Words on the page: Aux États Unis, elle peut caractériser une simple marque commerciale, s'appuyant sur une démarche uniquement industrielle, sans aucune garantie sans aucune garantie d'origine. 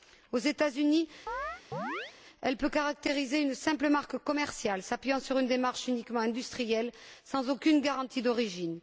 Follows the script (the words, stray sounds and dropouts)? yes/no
no